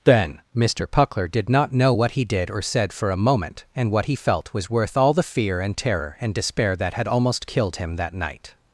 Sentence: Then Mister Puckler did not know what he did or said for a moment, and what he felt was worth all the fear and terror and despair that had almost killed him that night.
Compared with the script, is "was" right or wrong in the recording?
right